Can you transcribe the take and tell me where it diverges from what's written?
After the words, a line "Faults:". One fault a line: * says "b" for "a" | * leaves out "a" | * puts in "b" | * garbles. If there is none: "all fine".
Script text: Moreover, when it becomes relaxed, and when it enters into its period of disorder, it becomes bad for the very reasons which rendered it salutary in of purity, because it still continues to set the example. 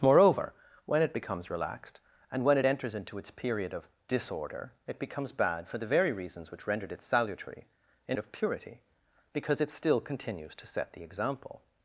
Moreover, when it becomes relaxed, and when it enters into its period of disorder, it becomes bad for the very reasons which rendered it salutary in of purity, because it still continues to set the example.
Faults:
all fine